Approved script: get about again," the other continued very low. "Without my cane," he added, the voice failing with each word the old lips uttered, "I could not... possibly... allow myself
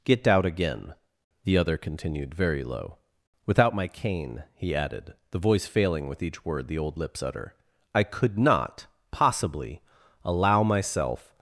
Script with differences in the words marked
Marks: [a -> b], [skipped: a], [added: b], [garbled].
get [about -> out] again," the other continued very low. "Without my cane," he added, the voice failing with each word the old lips [uttered, -> utter] "I could not... possibly... allow myself